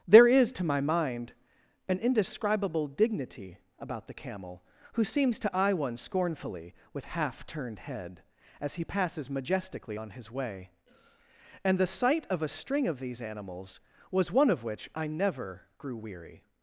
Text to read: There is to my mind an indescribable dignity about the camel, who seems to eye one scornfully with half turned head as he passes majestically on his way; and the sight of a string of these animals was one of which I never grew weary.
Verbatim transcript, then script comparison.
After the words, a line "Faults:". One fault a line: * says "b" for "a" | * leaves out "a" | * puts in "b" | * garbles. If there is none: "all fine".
There is to my mind an indescribable dignity about the camel, who seems to eye one scornfully with half turned head as he passes majestically on his way; and the sight of a string of these animals was one of which I never grew weary.
Faults:
all fine